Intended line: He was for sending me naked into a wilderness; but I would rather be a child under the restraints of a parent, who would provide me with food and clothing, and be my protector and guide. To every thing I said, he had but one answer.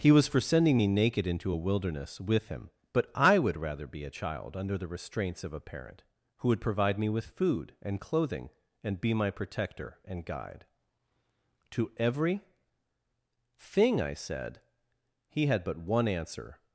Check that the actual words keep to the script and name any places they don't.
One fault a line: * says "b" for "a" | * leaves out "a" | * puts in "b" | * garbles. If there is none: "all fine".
* puts in "with him"